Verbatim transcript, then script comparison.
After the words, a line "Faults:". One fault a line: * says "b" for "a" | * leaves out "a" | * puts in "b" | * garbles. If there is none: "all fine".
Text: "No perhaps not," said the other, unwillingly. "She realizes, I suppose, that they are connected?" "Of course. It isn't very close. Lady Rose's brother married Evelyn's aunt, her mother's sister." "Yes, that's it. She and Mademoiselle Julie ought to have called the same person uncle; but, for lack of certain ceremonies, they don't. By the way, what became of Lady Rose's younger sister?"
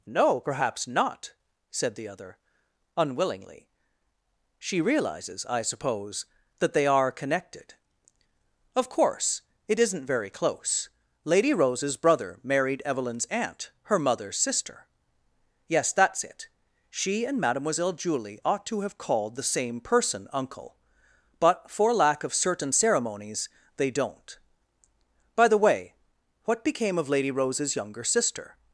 "No perhaps not," said the other, unwillingly. "She realizes, I suppose, that they are connected?" "Of course. It isn't very close. Lady Rose's brother married Evelyn's aunt, her mother's sister." "Yes, that's it. She and Mademoiselle Julie ought to have called the same person uncle; but, for lack of certain ceremonies, they don't. By the way, what became of Lady Rose's younger sister?"
Faults:
all fine